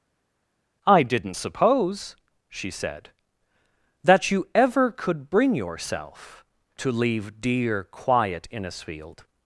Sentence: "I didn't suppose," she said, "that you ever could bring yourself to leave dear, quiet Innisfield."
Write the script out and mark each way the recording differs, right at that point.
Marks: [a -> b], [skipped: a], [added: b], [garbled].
"I didn't suppose," she said, "that you ever could bring yourself to leave dear, quiet Innisfield."